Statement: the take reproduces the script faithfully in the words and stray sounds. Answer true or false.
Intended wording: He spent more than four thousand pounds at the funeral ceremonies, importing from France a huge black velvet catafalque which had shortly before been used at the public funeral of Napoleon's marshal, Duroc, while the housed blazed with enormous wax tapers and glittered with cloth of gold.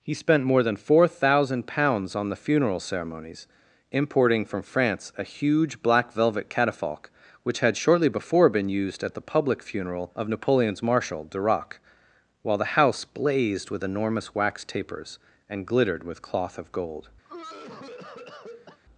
false